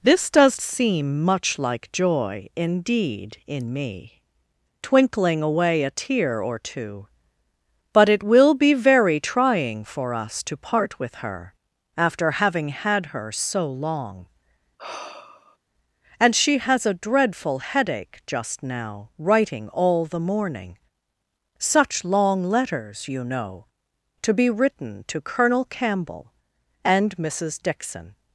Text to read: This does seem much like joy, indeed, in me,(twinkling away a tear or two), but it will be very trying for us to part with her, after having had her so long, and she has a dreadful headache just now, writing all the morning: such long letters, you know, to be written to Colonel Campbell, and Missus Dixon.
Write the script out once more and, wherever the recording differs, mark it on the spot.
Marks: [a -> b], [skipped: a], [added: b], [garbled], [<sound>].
This does seem much like joy, indeed, in me,(twinkling away a tear or two), but it will be very trying for us to part with her, after having had her so long, [sigh] and she has a dreadful headache just now, writing all the morning: such long letters, you know, to be written to Colonel Campbell, and Missus Dixon.